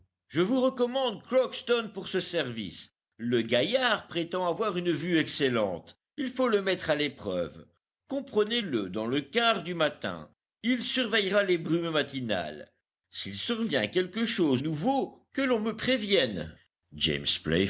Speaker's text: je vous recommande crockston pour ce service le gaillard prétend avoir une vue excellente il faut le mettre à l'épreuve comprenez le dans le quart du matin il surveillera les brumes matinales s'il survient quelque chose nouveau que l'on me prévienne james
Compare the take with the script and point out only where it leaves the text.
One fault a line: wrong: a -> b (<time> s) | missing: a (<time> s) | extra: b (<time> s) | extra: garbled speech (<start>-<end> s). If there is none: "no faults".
no faults